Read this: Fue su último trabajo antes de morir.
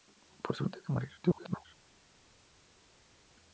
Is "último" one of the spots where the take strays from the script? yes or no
yes